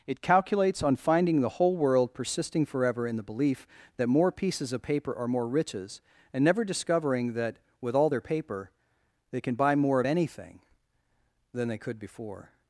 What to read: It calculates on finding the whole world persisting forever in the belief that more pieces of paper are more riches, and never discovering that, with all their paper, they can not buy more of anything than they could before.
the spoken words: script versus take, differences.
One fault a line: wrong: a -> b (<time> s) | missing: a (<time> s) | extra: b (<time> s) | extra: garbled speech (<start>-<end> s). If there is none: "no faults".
missing: not (9.5 s)